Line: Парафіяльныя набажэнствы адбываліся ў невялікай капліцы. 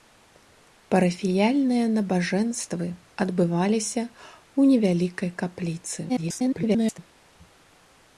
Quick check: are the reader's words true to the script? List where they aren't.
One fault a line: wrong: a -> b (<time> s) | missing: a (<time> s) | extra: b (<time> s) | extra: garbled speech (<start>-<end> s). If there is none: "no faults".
extra: garbled speech (6.1-7.0 s)